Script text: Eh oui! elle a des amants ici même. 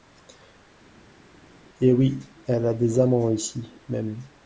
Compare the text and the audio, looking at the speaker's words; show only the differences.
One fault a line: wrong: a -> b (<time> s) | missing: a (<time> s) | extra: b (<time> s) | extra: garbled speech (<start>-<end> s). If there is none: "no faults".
no faults